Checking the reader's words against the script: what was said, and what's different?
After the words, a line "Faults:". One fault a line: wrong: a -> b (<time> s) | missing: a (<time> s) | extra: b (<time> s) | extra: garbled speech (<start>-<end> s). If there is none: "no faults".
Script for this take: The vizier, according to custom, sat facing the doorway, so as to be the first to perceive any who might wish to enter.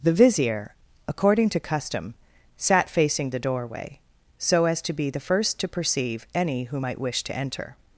The vizier, according to custom, sat facing the doorway, so as to be the first to perceive any who might wish to enter.
Faults:
no faults